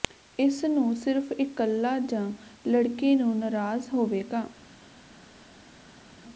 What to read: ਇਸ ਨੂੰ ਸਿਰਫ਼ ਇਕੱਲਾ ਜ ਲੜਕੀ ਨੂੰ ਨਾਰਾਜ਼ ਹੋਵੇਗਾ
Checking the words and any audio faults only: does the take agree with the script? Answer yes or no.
yes